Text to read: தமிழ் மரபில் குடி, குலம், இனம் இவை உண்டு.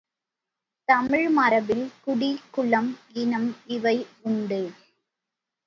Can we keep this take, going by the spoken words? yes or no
yes